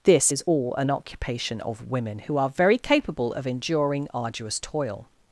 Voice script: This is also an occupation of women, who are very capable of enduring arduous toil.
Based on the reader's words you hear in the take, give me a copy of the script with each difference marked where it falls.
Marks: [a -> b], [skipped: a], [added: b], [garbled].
This is [also -> all] an occupation of women, who are very capable of enduring arduous toil.